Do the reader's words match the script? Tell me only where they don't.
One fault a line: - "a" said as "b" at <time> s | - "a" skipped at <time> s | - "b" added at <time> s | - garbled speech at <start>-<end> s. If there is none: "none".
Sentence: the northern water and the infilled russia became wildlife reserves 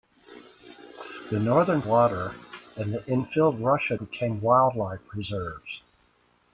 none